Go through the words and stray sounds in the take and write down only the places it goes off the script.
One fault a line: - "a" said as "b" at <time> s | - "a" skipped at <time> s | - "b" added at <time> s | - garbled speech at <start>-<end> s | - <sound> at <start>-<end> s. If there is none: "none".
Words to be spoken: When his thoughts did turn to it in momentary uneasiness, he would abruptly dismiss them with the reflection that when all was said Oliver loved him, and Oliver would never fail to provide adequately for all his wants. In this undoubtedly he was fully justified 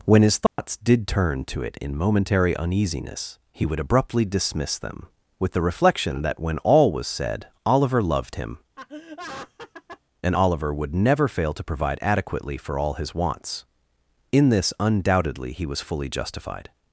- dropout at 0.5-0.6 s
- laugh at 8.8-10.0 s